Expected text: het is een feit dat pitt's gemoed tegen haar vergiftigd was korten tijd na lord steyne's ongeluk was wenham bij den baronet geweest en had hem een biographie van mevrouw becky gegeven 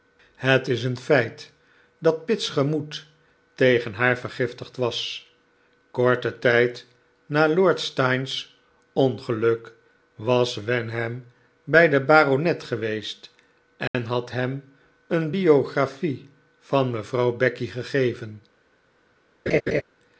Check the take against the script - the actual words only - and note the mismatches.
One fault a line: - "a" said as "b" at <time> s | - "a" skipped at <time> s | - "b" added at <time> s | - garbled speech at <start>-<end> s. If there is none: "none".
none